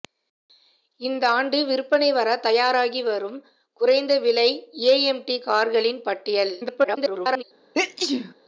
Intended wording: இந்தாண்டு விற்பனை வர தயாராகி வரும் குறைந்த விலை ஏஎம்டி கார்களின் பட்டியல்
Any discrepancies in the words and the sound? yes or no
yes